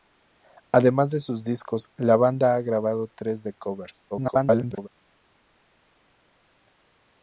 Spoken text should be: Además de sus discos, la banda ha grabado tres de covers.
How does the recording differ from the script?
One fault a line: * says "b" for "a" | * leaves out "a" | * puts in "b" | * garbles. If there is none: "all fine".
* garbles